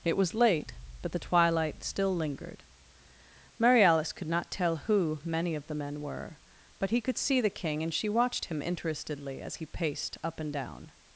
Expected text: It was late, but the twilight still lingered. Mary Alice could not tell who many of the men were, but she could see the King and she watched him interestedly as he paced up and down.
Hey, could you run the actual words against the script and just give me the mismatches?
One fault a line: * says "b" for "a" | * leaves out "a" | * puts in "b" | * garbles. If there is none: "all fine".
* says "he" for "she"